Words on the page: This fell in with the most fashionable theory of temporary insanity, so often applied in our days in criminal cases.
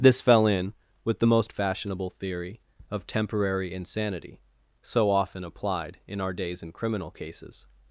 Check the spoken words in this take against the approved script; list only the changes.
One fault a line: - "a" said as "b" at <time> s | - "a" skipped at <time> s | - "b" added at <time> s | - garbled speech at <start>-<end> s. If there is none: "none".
none